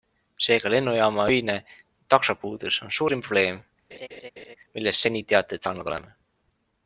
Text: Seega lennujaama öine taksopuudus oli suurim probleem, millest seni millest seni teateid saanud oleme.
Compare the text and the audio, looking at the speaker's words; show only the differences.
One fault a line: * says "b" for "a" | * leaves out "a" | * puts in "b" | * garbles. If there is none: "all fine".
* says "on" for "oli"
* leaves out "millest seni"